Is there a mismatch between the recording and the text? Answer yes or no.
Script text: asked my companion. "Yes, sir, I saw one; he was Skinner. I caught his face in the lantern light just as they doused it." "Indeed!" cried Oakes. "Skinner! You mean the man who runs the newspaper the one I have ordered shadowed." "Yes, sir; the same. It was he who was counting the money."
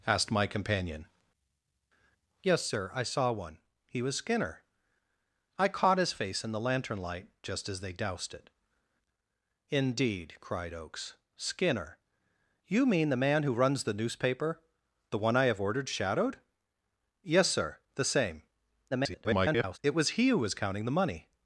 yes